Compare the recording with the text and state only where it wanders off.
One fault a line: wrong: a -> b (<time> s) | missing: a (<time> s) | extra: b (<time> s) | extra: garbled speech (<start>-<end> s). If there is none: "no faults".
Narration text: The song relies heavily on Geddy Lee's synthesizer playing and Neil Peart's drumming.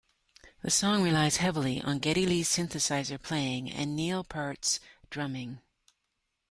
no faults